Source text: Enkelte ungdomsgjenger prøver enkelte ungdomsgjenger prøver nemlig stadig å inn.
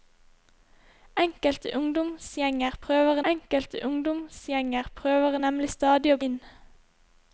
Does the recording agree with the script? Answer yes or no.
yes